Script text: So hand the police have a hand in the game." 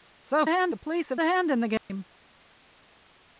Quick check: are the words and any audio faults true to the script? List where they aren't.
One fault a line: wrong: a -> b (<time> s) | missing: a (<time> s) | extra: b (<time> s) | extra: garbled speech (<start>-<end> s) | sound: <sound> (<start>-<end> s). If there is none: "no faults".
sound: dropout (1.8-1.9 s)